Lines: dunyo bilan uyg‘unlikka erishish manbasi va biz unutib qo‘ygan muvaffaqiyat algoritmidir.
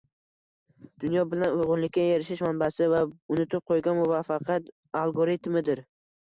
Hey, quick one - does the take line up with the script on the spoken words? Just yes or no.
no